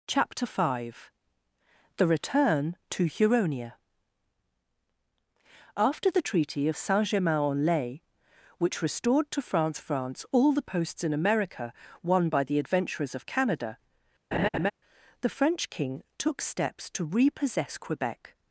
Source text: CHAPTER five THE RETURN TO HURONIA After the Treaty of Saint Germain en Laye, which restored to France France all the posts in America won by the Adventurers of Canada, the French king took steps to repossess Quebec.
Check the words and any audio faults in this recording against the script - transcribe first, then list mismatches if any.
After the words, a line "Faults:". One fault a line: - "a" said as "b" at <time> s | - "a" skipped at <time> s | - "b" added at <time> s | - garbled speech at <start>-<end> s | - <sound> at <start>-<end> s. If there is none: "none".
CHAPTER five THE RETURN TO HURONIA After the Treaty of Saint Germain en Laye, which restored to France France all the posts in America won by the Adventurers of Canada, the French king took steps to repossess Quebec.
Faults:
- laugh at 14.3-14.7 s